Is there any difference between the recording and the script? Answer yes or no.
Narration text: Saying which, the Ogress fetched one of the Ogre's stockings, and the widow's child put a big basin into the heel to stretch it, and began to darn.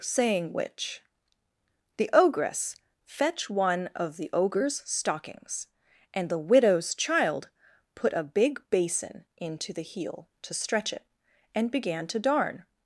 yes